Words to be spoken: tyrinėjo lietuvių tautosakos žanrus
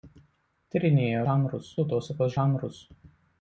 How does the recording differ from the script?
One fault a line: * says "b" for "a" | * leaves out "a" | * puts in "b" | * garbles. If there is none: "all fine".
* says "žanrus" for "lietuvių"